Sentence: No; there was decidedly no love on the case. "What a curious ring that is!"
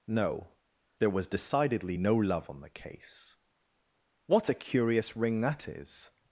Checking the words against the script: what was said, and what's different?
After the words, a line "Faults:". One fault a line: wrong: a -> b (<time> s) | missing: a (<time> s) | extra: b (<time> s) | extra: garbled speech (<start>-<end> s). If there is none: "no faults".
No; there was decidedly no love on the case. "What a curious ring that is!"
Faults:
no faults